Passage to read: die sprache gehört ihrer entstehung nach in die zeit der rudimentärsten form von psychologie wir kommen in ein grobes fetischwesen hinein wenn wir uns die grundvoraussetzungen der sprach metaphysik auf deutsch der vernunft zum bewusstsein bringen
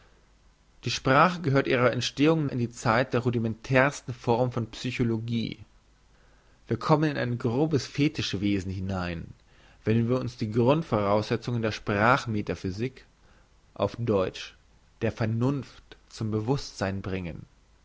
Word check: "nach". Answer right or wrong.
wrong